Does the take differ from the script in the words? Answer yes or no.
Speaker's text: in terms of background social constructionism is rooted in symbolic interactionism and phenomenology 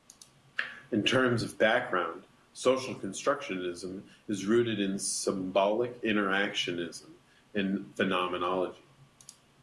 no